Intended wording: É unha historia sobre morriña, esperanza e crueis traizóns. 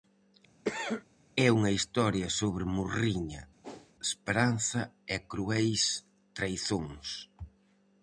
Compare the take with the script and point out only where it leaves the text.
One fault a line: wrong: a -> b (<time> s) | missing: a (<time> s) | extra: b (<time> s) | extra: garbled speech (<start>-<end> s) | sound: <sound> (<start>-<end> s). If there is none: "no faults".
sound: cough (0.6-1.0 s)
sound: whoosh (3.6-3.9 s)